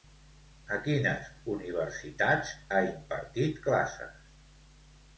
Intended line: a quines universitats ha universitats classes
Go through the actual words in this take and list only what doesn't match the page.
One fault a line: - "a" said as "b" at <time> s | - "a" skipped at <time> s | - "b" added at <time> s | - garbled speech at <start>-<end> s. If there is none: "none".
- "universitats" said as "impartit" at 2.9 s